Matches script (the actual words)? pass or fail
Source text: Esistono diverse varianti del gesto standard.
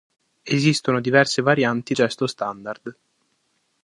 fail